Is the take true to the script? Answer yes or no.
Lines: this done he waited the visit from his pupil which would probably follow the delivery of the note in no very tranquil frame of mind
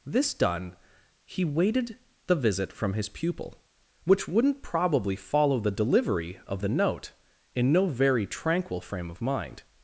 no